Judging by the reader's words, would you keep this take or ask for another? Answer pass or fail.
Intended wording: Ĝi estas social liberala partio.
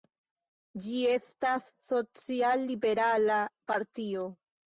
pass